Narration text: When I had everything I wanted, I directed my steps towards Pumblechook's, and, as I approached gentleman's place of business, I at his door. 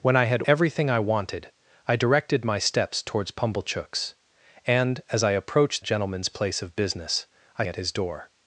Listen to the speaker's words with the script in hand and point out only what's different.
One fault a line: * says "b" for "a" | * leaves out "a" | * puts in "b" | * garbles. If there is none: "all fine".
all fine